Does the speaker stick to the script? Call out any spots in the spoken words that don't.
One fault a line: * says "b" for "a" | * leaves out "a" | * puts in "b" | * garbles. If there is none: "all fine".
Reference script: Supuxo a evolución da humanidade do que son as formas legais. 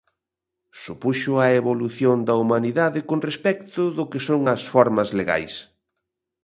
* puts in "con respecto"